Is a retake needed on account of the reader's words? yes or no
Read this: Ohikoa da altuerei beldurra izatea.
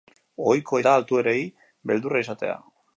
no